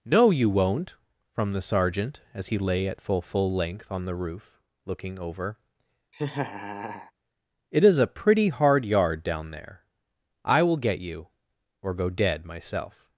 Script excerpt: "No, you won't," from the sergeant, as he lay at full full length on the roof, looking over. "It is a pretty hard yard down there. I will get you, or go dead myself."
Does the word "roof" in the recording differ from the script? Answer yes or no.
no